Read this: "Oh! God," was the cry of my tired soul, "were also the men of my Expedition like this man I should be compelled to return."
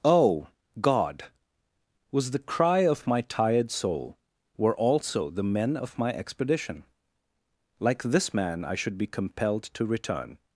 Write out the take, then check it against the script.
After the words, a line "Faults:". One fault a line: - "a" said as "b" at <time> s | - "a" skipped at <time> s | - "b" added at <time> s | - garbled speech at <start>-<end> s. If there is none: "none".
"Oh! God," was the cry of my tired soul, "were also the men of my Expedition like this man I should be compelled to return."
Faults:
none